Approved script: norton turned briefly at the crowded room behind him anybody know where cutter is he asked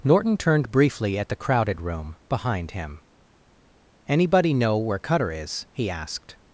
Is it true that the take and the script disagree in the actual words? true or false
false